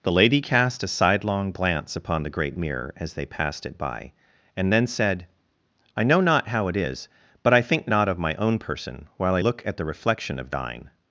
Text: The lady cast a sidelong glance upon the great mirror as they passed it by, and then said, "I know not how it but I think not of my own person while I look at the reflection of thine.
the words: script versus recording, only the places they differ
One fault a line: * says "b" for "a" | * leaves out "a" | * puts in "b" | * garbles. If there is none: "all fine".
* puts in "is"